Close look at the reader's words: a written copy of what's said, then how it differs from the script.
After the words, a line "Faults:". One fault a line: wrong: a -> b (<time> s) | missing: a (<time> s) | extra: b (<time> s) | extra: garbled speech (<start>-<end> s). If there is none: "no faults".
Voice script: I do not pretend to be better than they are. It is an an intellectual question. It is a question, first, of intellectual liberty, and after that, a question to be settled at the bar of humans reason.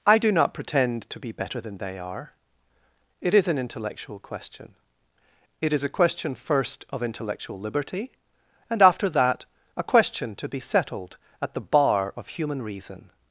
I do not pretend to be better than they are. It is an intellectual question. It is a question, first, of intellectual liberty, and after that, a question to be settled at the bar of human reason.
Faults:
missing: an (3.6 s)
wrong: humans -> human (12.3 s)